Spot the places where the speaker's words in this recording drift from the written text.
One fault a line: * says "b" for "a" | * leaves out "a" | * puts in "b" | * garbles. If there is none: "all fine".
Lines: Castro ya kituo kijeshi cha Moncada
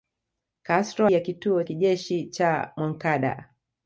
all fine